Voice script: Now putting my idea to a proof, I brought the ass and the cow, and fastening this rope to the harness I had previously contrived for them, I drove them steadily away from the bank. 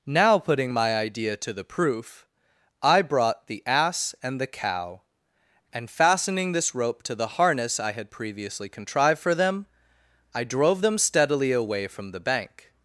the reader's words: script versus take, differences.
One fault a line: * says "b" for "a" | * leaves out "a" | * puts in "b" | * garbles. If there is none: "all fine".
* says "the" for "a"